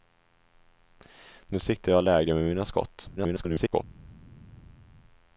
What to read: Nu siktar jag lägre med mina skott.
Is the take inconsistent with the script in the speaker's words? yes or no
yes